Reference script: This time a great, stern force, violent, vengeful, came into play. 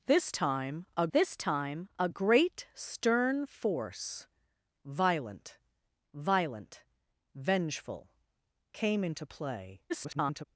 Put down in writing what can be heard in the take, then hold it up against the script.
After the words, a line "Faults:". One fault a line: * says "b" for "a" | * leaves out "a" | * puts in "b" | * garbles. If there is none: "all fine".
This time a this time a great, stern force, violent violent, vengeful, came into play. [garbled]
Faults:
* puts in "this time a"
* puts in "violent"
* garbles